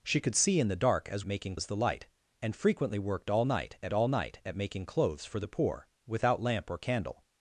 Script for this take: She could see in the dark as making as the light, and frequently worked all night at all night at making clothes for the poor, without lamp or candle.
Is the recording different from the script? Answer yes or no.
no